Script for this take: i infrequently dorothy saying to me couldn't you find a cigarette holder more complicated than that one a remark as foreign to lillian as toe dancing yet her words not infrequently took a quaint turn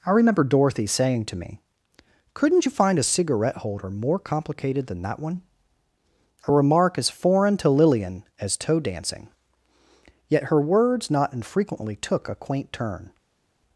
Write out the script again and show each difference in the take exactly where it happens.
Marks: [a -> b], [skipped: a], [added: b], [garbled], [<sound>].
i [infrequently -> remember] dorothy saying to me couldn't you find a cigarette holder more complicated than that one a remark as foreign to lillian as toe dancing yet her words not infrequently took a quaint turn